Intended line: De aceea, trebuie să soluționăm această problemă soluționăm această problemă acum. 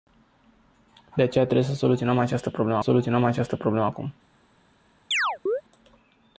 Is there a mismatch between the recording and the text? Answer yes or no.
no